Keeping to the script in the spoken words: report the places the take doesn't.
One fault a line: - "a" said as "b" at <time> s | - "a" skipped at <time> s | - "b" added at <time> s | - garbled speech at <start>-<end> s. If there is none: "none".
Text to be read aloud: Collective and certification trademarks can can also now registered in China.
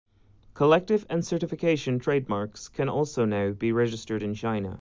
- "can" skipped at 2.9 s
- "be" added at 3.5 s